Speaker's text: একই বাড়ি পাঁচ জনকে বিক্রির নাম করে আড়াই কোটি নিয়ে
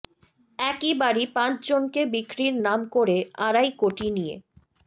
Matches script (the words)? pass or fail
pass